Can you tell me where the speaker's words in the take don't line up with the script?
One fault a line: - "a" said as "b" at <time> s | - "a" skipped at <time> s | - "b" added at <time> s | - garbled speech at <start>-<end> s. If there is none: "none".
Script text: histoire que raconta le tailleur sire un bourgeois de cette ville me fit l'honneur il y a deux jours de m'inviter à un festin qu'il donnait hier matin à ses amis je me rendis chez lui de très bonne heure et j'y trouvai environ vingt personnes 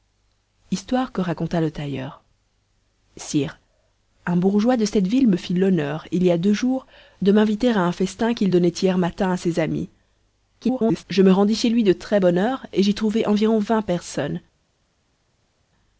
- garbled speech at 10.6-11.0 s